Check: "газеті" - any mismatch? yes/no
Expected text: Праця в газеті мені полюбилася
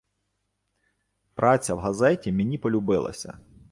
no